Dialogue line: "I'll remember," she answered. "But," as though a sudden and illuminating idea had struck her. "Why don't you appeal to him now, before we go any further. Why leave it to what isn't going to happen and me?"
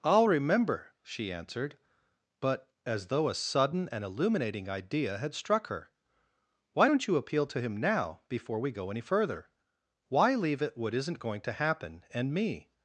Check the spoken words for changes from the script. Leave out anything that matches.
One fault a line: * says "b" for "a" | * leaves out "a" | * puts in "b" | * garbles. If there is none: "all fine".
* leaves out "to"